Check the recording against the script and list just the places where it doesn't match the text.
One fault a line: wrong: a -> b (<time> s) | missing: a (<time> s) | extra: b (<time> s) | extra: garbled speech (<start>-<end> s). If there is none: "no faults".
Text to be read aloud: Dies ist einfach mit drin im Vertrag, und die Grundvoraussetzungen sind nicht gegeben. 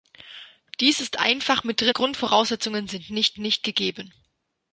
missing: im Vertrag und (1.9 s)
extra: nicht (3.4 s)